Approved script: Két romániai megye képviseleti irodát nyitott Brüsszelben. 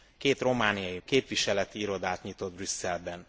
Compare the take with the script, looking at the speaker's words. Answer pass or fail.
fail